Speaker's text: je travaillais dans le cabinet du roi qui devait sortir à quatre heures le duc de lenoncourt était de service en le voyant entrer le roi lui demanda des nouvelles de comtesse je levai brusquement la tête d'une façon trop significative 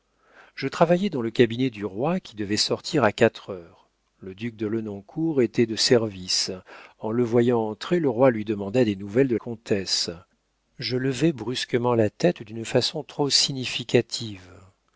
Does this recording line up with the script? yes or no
yes